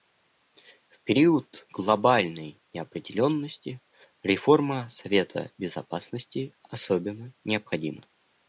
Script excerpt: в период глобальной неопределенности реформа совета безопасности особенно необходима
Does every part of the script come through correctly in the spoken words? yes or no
yes